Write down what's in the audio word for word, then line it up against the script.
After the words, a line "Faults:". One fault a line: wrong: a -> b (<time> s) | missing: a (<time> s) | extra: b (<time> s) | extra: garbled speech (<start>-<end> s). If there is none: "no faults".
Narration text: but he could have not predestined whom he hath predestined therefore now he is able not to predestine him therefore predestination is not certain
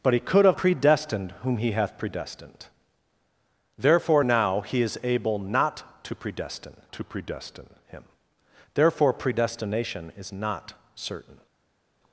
but he could have predestined whom he hath predestined therefore now he is able not to predestine to predestine him therefore predestination is not certain
Faults:
missing: not (0.6 s)
extra: to predestine (6.9 s)